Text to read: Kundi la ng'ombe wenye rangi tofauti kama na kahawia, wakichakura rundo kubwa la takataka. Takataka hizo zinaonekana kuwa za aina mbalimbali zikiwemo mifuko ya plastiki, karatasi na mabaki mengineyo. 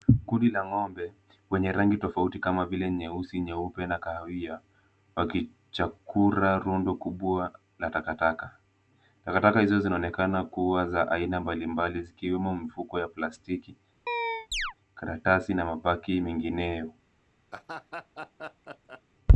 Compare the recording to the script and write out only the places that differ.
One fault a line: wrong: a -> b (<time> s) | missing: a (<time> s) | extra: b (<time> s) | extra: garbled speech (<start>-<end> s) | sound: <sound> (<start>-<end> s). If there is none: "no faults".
extra: vile nyeusi nyeupe (2.6 s)
sound: chirp (14.1-14.7 s)
sound: laugh (17.5-19.0 s)